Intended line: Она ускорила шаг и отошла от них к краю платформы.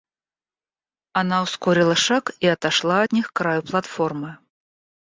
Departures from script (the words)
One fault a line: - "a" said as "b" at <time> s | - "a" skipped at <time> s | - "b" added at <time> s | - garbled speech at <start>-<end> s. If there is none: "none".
none